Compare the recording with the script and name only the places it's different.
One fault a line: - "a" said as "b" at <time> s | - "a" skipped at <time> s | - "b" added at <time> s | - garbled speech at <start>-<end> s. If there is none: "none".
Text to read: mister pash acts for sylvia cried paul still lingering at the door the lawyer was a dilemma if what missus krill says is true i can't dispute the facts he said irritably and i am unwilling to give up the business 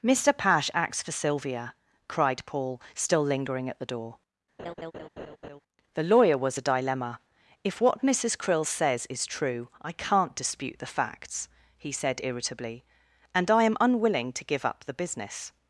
none